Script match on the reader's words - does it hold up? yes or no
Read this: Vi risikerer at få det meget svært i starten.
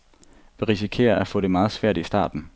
yes